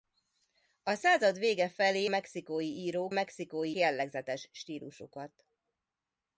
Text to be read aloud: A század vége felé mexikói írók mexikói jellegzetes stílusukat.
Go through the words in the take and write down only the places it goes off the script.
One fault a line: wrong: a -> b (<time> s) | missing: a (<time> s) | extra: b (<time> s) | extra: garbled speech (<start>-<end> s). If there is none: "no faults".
no faults